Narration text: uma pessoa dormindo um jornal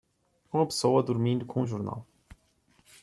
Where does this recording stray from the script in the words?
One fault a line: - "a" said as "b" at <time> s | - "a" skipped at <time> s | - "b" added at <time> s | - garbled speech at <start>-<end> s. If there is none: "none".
- "com" added at 1.5 s